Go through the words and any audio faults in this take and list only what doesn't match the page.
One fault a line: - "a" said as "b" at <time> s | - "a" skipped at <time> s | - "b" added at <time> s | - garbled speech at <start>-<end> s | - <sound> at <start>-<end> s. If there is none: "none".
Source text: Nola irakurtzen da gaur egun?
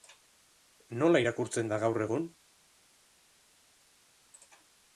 none